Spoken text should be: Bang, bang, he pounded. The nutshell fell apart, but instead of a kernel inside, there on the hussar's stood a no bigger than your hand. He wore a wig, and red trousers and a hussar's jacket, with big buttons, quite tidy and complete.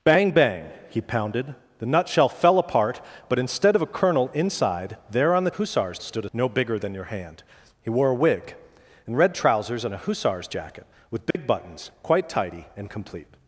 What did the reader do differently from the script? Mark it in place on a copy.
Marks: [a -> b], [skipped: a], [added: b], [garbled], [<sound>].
Bang, bang, he pounded. The nutshell fell apart, but instead of a kernel inside, there on the hussar's stood a no bigger than your hand. He wore a wig, and red trousers and a hussar's jacket, with big [dropout] buttons, quite tidy and complete.